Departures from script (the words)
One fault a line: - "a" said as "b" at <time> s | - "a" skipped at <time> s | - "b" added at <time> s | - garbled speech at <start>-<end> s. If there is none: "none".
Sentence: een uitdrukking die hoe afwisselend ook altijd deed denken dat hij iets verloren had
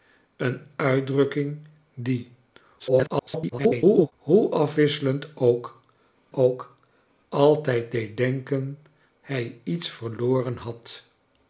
- garbled speech at 2.8-4.1 s
- "ook" added at 6.3 s
- "dat" skipped at 8.8 s